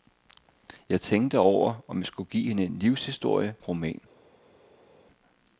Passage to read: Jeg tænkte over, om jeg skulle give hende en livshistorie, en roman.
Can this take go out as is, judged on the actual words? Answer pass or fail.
fail